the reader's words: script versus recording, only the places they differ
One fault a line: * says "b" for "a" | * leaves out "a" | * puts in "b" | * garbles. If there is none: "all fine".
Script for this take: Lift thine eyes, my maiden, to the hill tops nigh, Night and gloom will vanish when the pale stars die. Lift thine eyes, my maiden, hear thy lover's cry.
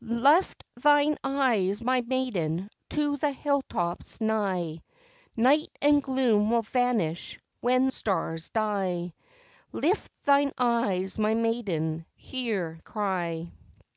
* leaves out "the pale"
* leaves out "thy lover's"